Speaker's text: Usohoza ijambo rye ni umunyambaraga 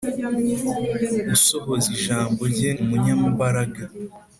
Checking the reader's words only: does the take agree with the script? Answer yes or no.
no